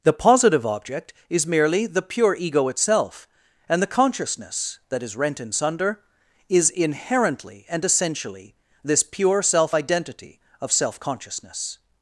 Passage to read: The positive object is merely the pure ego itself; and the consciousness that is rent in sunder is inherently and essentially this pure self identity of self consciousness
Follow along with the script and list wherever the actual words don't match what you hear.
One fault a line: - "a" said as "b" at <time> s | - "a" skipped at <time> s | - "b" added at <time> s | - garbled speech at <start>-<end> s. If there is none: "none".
none